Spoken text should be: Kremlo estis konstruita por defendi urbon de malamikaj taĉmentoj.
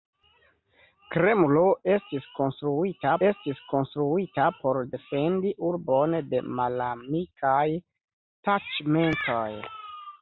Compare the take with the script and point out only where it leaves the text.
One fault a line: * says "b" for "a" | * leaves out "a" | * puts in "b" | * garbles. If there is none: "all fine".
* puts in "estis konstruita"